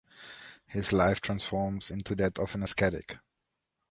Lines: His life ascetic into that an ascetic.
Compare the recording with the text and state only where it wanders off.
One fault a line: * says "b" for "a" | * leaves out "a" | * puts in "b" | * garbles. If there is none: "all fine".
* says "transforms" for "ascetic"
* puts in "of"